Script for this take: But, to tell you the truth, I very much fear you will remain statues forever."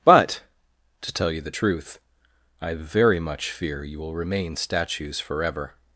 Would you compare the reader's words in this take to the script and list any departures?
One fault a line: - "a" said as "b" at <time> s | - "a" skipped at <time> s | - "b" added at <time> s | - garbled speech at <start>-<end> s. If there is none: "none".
none